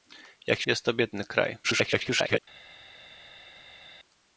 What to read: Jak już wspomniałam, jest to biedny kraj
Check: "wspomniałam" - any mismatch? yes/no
yes